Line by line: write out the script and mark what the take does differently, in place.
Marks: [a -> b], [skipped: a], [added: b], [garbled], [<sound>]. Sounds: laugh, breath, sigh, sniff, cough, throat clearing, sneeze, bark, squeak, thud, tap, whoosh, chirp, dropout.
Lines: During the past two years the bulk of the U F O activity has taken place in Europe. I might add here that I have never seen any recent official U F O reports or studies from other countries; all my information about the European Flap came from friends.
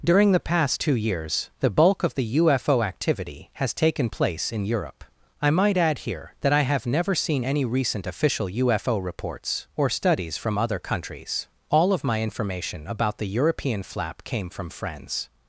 During the past two years the bulk of the U F O activity has taken place in Europe. I might add here that I have never seen any recent official U F O reports or studies from other countries; all [added: of] my information about the European Flap came from friends.